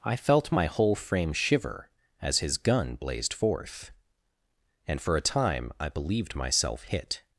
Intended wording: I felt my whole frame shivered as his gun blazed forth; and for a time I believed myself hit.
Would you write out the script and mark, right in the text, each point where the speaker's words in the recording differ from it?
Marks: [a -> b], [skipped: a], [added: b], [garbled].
I felt my whole frame [shivered -> shiver] as his gun blazed forth; and for a time I believed myself hit.